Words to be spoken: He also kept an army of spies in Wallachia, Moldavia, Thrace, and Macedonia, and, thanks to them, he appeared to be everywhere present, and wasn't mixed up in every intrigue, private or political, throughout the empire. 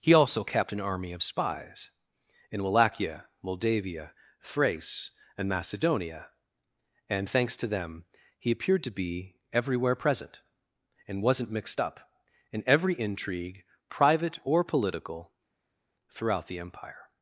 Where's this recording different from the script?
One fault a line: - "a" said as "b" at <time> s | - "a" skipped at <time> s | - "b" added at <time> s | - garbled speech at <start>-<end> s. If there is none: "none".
none